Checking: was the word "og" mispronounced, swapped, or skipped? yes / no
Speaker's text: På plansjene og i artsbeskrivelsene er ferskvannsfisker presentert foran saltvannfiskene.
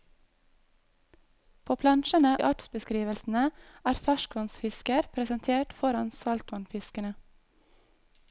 yes